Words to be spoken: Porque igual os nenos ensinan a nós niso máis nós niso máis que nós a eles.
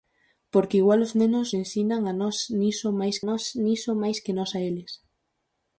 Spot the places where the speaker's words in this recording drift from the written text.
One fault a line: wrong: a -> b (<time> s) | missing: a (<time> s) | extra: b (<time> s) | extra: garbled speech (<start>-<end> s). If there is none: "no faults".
no faults